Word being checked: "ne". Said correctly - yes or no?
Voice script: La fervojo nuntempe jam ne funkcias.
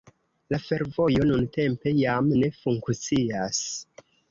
yes